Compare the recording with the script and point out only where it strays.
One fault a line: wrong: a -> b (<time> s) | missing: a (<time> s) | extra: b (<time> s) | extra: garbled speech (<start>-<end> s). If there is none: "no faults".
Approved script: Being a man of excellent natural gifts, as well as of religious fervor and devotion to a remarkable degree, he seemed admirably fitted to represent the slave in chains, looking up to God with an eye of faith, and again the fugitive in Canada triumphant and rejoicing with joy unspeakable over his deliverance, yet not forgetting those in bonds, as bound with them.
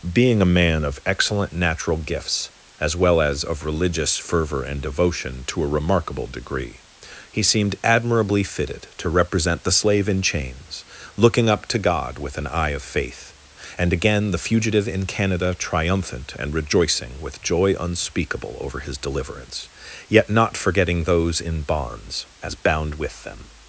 no faults